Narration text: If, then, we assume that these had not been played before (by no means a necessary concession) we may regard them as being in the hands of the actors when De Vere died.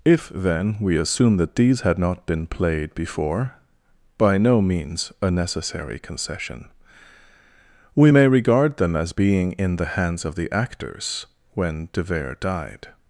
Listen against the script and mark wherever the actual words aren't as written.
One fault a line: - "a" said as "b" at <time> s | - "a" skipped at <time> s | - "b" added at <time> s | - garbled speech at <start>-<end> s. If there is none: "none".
none